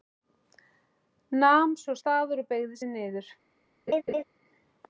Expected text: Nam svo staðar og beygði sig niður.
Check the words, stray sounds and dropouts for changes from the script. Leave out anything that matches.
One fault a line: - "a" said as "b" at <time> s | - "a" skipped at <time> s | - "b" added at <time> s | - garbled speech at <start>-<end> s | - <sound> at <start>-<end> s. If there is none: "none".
- laugh at 3.9-4.2 s